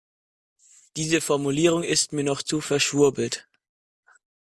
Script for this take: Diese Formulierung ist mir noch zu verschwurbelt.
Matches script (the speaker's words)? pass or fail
pass